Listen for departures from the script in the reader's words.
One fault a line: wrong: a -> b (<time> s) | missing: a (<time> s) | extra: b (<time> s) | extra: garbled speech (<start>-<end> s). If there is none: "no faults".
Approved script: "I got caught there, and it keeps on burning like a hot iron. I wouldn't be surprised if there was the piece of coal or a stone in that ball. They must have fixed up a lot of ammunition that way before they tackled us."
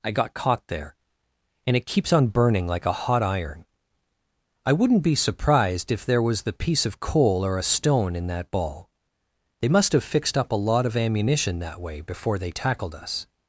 no faults